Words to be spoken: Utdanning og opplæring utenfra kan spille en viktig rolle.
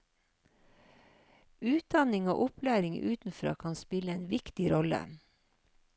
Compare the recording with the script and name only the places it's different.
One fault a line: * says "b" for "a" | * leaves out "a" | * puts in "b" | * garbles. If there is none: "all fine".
all fine